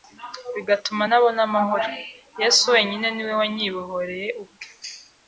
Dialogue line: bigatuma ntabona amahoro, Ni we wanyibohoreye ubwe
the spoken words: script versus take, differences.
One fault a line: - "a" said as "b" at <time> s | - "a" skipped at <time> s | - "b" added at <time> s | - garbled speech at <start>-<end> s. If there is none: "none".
- "Yesu wenyine" added at 2.4 s